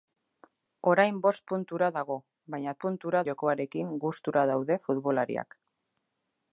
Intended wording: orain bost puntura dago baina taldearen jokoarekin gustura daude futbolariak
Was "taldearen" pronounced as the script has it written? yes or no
no